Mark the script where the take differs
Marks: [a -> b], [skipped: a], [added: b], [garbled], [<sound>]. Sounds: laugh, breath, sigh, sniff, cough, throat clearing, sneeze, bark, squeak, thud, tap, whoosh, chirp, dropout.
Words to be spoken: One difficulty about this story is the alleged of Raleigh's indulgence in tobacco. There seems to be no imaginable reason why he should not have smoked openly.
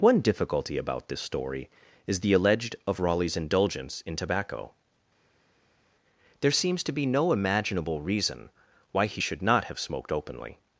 One difficulty about this story is the alleged of Raleigh's indulgence in tobacco. There seems to be no imaginable reason why he should not have smoked openly.